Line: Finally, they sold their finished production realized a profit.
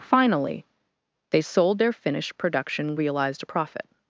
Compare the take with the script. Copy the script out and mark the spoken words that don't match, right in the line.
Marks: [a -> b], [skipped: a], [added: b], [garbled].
Finally, they sold their finished production realized a profit.